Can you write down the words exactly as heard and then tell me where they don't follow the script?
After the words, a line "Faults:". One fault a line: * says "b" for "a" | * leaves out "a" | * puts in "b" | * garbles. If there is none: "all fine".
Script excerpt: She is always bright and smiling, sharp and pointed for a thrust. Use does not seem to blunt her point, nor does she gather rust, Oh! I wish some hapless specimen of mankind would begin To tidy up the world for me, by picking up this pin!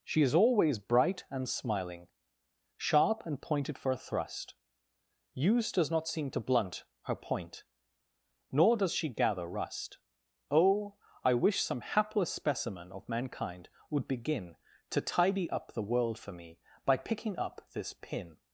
She is always bright and smiling, sharp and pointed for a thrust. Use does not seem to blunt her point, nor does she gather rust, Oh! I wish some hapless specimen of mankind would begin To tidy up the world for me, by picking up this pin!
Faults:
all fine